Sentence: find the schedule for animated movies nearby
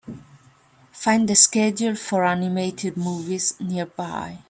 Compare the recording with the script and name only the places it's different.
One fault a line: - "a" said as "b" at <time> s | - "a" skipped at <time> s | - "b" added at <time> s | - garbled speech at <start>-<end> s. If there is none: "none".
none